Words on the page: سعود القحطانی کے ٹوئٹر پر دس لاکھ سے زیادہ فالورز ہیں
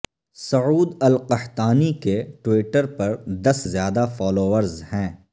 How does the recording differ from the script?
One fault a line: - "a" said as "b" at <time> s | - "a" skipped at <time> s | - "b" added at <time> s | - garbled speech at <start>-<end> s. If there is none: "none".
- "لاکھ سے" skipped at 3.6 s